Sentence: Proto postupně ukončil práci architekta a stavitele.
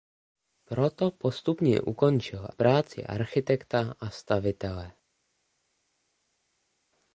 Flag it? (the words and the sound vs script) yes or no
no